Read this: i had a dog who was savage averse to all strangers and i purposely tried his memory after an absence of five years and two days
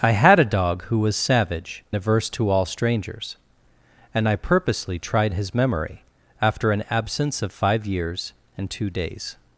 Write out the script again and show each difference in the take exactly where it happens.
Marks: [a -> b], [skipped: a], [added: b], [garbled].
i had a dog who was savage averse to all strangers and i purposely tried his memory after an absence of five years and two days